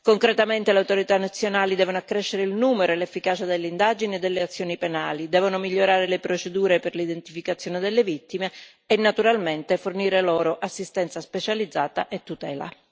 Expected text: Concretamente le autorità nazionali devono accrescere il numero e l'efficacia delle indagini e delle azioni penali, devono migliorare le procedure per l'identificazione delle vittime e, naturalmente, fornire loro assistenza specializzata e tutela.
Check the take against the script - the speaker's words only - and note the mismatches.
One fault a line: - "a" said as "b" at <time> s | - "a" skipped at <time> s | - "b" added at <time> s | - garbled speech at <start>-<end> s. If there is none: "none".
none